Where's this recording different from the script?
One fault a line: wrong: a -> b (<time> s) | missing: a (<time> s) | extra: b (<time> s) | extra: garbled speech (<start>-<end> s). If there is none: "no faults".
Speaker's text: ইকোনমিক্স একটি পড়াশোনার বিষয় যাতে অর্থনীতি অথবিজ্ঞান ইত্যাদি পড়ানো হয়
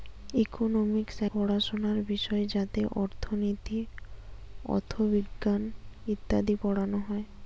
missing: একটি (1.2 s)